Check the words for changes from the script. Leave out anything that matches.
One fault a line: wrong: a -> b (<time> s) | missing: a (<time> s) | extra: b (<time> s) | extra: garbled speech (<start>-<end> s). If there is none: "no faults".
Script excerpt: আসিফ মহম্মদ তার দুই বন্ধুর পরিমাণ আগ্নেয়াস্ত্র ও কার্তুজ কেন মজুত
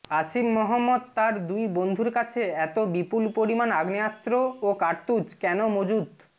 extra: কাছে এত বিপুল (2.1 s)